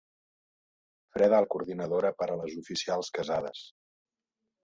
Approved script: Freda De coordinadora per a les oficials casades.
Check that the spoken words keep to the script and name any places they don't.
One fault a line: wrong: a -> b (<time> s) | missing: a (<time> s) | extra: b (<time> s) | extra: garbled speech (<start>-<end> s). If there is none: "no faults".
no faults